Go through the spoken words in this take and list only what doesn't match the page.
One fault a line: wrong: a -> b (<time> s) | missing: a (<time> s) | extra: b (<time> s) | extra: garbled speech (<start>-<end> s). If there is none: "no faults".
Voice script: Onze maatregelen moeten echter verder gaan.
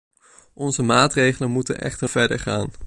no faults